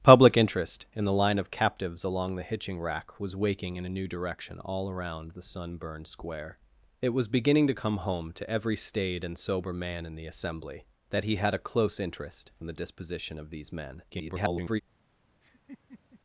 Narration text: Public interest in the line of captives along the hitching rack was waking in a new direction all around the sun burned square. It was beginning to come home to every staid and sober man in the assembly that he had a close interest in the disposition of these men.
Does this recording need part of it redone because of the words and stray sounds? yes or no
yes